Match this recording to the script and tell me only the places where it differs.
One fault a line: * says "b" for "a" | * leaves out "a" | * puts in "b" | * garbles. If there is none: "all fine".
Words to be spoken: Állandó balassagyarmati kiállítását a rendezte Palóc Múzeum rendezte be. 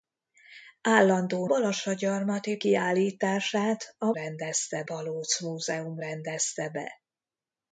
all fine